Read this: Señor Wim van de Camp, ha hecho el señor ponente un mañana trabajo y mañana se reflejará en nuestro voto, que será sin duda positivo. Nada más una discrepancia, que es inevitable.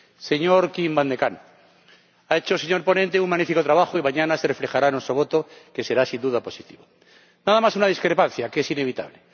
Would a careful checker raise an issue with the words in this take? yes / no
yes